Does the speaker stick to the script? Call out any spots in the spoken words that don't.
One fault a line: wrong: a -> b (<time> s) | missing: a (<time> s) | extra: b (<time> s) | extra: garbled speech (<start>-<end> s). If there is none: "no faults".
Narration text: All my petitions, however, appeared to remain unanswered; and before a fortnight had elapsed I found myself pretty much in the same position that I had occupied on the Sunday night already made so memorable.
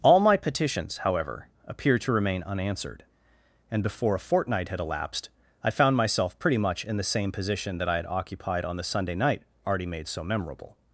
no faults